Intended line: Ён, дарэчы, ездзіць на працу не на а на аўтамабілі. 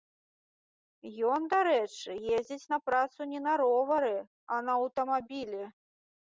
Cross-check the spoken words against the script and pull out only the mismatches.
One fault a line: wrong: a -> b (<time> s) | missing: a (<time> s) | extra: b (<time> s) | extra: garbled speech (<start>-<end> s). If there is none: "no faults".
extra: ровары (3.6 s)